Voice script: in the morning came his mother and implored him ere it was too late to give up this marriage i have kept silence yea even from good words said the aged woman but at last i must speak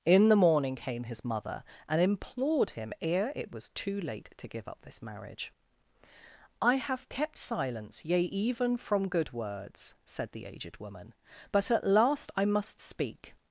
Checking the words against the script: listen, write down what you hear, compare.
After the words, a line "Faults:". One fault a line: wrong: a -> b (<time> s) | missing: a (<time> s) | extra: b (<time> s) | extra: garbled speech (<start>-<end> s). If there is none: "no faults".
in the morning came his mother and implored him ere it was too late to give up this marriage i have kept silence yea even from good words said the aged woman but at last i must speak
Faults:
no faults